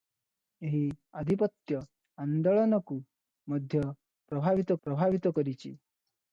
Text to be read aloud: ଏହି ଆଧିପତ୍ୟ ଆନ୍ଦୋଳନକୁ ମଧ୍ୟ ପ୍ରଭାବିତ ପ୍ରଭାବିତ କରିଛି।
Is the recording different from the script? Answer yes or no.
no